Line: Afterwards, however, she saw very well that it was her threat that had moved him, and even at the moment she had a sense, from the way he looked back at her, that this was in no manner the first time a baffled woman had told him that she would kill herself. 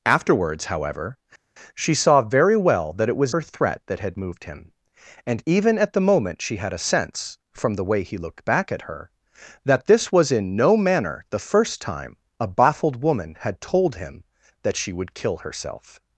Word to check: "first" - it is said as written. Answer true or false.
true